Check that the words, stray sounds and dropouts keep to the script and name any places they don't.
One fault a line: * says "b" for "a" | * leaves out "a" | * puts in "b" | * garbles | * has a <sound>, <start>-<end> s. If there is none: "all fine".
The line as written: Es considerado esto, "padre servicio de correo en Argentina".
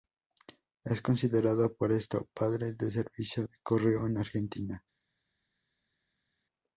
* puts in "por"
* puts in "del"